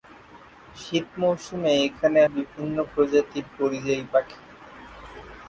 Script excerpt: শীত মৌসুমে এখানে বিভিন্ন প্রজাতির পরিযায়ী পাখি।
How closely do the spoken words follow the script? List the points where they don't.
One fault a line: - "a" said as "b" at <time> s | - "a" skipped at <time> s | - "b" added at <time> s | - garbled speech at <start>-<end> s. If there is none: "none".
none